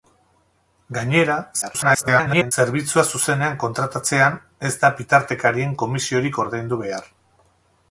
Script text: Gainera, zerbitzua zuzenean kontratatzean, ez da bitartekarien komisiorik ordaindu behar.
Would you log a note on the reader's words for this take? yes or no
yes